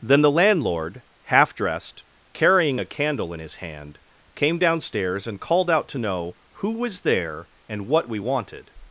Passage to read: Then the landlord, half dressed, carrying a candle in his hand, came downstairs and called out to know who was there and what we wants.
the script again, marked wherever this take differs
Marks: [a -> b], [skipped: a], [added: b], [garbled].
Then the landlord, half dressed, carrying a candle in his hand, came downstairs and called out to know who was there and what we [wants. -> wanted]